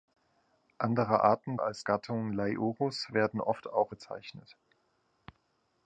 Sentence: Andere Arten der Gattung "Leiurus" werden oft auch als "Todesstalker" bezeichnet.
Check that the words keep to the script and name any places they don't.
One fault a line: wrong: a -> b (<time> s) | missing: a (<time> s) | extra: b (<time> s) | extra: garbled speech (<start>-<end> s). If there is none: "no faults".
wrong: der -> als (1.6 s)
missing: als Todesstalker (3.9 s)